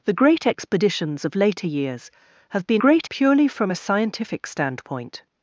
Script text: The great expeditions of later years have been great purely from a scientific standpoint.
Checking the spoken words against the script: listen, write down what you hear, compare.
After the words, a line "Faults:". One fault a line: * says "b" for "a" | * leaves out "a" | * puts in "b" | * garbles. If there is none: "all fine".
The great expeditions of later years have been great purely from a scientific standpoint.
Faults:
all fine